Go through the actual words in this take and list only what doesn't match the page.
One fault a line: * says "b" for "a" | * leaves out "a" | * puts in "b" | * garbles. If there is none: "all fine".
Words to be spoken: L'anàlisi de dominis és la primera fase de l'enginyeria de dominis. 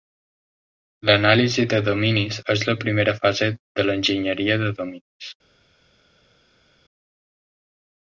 all fine